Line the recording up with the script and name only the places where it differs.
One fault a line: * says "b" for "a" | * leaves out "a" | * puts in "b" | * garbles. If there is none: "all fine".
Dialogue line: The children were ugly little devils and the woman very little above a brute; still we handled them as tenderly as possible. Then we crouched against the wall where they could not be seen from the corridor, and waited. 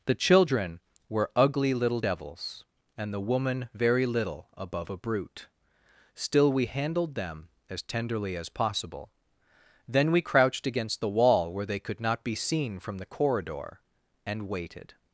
all fine